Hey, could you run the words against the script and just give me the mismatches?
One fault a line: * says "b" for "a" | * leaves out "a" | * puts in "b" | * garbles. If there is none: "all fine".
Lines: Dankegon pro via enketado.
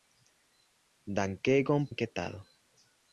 * leaves out "pro via"